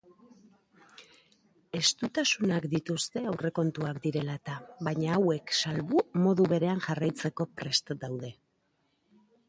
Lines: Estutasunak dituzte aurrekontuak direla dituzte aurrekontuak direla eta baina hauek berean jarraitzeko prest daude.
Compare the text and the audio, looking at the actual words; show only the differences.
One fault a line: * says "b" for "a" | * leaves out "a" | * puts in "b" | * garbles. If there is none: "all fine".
* leaves out "dituzte aurrekontuak direla"
* puts in "salbu modu"